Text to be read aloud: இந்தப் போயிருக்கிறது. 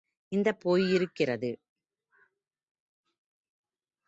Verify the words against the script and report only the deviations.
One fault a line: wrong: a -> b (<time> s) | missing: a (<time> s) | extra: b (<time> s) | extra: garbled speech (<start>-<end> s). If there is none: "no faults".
no faults